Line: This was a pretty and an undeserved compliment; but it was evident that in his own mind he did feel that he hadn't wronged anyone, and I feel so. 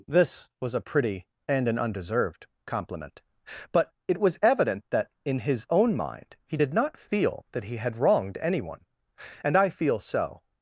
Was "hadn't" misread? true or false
true